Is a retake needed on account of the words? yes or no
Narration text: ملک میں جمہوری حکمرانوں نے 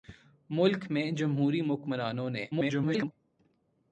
yes